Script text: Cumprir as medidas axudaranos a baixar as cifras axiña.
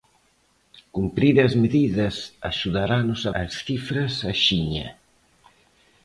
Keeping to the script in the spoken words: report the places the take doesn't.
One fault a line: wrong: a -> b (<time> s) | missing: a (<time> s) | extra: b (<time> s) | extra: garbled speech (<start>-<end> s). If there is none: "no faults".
missing: baixar (3.3 s)